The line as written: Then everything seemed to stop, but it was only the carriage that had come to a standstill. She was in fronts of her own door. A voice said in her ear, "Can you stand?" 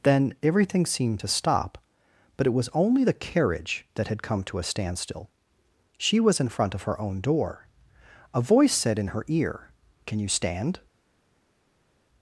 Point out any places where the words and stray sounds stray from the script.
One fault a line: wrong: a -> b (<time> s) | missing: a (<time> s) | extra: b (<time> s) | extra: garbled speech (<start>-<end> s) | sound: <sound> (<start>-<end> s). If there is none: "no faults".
wrong: fronts -> front (6.5 s)